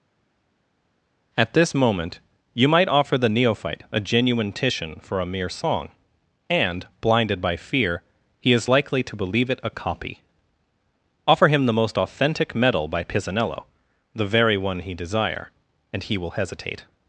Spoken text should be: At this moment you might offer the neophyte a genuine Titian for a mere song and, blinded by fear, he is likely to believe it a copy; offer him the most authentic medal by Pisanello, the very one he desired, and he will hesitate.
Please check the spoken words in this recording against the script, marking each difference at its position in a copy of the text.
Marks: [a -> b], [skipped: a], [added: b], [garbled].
At this moment you might offer the neophyte a genuine Titian for a mere song and, blinded by fear, he is likely to believe it a copy; offer him the most authentic medal by Pisanello, the very one he [desired, -> desire] and he will hesitate.